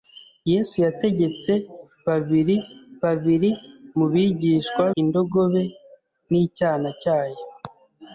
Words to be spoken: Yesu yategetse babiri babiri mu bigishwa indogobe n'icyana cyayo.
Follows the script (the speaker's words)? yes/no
yes